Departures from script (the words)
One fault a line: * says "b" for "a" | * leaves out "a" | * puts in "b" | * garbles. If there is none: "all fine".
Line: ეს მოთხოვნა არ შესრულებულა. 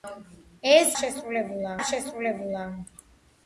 * says "შესრულებულა" for "მოთხოვნა"